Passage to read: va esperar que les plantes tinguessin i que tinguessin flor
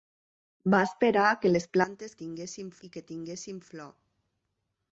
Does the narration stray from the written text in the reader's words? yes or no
no